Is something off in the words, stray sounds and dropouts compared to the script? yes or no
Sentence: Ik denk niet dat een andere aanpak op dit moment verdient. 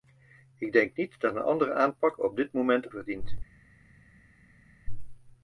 no